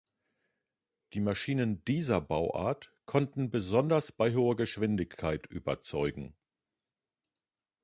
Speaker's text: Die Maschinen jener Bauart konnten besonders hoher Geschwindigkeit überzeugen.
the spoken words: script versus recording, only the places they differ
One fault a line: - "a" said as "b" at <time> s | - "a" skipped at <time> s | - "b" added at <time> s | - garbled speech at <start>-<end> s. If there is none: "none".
- "jener" said as "dieser" at 1.9 s
- "bei" added at 4.1 s